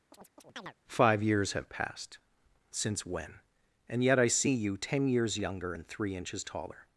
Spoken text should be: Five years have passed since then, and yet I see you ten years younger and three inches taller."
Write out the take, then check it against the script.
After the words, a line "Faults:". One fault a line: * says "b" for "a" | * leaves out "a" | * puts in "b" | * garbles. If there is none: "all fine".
Five years have passed since when, and yet I see you ten years younger and three inches taller."
Faults:
* says "when" for "then"